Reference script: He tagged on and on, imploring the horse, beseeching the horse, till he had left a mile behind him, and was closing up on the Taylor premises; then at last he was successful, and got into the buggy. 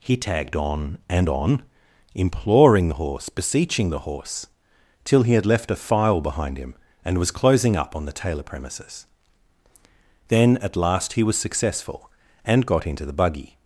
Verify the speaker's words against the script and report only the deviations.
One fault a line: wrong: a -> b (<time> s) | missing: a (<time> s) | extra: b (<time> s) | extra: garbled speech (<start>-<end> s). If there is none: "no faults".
wrong: mile -> file (5.8 s)